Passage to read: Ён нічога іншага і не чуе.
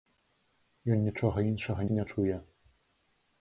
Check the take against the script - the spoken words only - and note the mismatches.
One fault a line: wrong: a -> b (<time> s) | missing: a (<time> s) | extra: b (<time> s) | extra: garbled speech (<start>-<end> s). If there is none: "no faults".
no faults